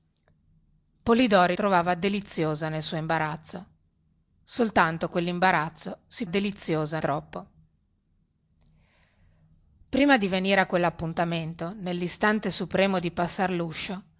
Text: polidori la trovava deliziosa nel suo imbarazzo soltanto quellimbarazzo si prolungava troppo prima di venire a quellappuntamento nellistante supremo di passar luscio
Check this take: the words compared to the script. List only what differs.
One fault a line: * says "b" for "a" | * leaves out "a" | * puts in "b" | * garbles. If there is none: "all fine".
* leaves out "la"
* says "deliziosa" for "prolungava"